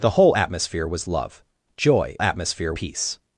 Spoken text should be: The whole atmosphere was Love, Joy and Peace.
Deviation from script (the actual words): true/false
true